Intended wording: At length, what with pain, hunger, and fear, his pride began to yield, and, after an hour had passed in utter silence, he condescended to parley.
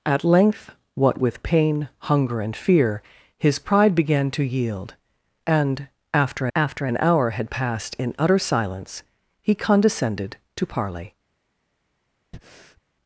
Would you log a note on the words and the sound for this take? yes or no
yes